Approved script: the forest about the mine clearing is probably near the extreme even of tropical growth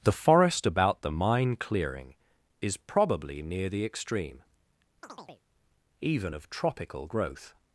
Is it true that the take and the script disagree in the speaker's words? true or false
false